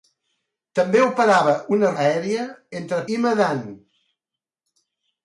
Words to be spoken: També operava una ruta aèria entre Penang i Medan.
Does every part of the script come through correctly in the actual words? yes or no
no